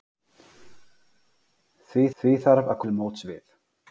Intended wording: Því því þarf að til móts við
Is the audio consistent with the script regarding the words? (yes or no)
yes